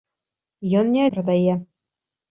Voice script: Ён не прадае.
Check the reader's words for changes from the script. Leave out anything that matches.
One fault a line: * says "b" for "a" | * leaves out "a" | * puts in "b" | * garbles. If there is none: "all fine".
all fine